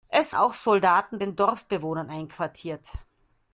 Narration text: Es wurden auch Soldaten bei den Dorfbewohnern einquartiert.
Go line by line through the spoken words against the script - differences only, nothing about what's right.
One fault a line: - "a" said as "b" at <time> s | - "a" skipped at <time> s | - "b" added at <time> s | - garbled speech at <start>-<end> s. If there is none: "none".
- "wurden" skipped at 0.3 s
- "bei" skipped at 1.2 s